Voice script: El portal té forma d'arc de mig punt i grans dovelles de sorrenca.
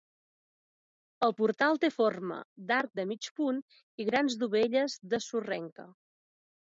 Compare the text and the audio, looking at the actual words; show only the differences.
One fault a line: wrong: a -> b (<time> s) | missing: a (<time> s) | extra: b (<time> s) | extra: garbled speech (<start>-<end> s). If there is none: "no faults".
no faults